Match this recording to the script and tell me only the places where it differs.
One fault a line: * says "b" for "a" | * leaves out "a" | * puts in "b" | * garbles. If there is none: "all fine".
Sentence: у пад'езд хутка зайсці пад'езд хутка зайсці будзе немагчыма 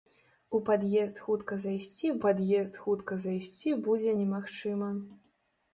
all fine